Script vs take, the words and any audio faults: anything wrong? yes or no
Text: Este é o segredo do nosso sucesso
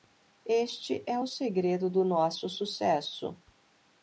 no